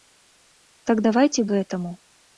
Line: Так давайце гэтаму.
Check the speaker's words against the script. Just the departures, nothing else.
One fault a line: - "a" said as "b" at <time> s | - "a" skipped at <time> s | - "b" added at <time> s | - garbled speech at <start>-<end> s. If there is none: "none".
none